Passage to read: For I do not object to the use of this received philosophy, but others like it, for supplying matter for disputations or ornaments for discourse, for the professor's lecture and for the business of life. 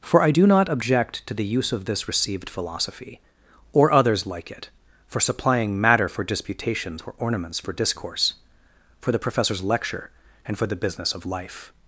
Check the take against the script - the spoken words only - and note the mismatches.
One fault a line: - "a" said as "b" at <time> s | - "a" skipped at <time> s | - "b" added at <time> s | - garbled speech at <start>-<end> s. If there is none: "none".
- "but" said as "or" at 3.7 s